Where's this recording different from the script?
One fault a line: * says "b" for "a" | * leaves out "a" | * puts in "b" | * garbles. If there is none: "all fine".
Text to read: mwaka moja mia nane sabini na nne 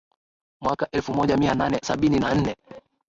* puts in "elfu"